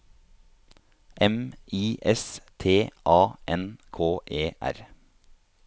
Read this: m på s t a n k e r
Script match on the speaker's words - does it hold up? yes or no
no